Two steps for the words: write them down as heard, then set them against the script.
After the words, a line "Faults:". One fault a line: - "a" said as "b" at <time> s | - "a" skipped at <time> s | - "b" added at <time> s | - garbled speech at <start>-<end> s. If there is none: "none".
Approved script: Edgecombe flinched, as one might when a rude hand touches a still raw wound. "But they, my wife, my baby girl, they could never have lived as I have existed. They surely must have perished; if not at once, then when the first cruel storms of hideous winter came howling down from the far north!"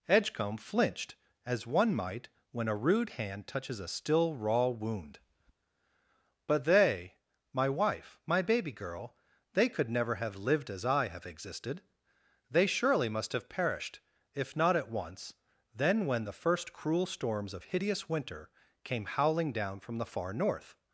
Edgecombe flinched, as one might when a rude hand touches a still raw wound. "But they, my wife, my baby girl, they could never have lived as I have existed. They surely must have perished; if not at once, then when the first cruel storms of hideous winter came howling down from the far north!"
Faults:
none